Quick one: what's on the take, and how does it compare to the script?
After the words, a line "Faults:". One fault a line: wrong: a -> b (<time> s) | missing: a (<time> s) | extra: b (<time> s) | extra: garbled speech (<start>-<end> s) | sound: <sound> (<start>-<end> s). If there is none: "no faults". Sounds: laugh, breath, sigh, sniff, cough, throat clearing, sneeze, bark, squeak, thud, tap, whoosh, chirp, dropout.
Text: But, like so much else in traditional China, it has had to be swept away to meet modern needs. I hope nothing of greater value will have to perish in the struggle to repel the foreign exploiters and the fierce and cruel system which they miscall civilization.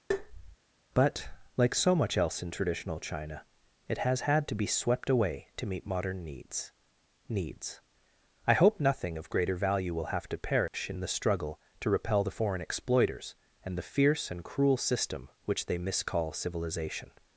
But, like so much else in traditional China, it has had to be swept away to meet modern needs needs. I hope nothing of greater value will have to perish in the struggle to repel the foreign exploiters and the fierce and cruel system which they miscall civilization.
Faults:
sound: tap (0.1-0.6 s)
extra: needs (7.3 s)
sound: dropout (10.7-10.7 s)